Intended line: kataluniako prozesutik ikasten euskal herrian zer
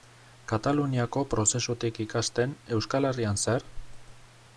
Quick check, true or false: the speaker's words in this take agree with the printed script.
true